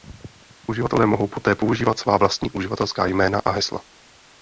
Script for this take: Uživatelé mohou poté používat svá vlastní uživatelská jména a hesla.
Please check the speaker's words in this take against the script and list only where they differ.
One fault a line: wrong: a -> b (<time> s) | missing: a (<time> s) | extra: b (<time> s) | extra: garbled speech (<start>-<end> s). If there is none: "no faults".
no faults